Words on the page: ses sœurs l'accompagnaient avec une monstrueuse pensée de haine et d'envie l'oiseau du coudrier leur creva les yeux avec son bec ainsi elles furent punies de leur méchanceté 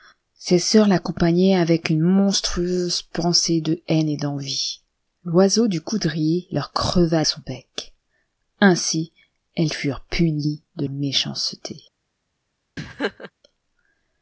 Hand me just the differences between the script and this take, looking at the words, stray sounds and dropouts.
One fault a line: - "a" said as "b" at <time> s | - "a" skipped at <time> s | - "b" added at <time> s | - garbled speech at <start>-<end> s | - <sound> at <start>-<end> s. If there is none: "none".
- "les yeux avec" skipped at 7.2 s
- "leur" skipped at 10.9 s
- laugh at 12.8-13.3 s